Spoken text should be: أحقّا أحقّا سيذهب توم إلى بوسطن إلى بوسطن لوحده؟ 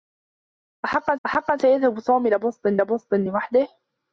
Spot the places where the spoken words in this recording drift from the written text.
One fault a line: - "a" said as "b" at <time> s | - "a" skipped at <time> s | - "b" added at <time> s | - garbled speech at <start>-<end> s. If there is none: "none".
none